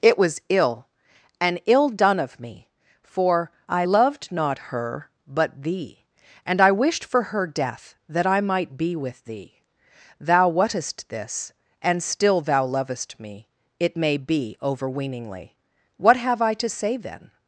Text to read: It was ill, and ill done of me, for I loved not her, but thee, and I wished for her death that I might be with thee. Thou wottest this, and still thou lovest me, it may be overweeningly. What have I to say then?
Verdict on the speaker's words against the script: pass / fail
pass